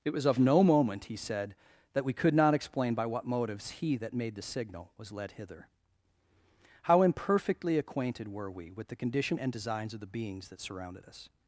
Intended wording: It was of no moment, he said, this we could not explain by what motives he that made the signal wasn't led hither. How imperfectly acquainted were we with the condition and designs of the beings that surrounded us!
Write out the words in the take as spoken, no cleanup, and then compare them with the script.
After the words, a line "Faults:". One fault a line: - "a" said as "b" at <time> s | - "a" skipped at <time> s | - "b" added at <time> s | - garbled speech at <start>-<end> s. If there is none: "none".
It was of no moment, he said, that we could not explain by what motives he that made the signal was led hither. How imperfectly acquainted were we with the condition and designs of the beings that surrounded us!
Faults:
- "this" said as "that" at 1.9 s
- "wasn't" said as "was" at 5.0 s